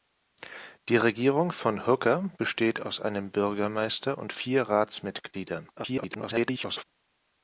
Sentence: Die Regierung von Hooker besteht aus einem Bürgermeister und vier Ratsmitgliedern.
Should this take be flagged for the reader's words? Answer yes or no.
yes